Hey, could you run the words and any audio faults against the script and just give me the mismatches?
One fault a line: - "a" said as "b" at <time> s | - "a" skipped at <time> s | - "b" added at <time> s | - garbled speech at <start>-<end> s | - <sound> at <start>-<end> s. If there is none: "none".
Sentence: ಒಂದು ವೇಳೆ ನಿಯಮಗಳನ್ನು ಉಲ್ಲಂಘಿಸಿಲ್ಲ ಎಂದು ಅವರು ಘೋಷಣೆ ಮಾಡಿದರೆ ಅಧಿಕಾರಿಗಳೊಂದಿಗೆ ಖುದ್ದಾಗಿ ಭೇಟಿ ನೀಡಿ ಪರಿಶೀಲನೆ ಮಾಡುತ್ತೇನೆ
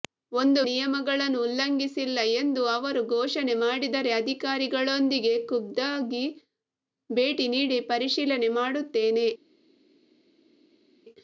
- "ವೇಳೆ" skipped at 0.6 s